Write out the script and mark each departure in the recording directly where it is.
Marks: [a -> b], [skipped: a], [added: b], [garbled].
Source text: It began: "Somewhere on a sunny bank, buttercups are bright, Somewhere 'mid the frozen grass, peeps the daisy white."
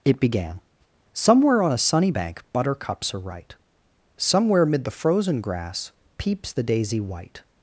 It began: "Somewhere on a sunny bank, buttercups are [bright, -> right] Somewhere 'mid the frozen grass, peeps the daisy white."